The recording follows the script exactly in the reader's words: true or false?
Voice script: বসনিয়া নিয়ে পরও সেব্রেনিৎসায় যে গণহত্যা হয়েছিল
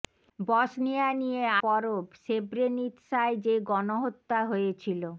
true